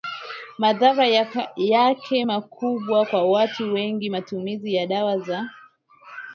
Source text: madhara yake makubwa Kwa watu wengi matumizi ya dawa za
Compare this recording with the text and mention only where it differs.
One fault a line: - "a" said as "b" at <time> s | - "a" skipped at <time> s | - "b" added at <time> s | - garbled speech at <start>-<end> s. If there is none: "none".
none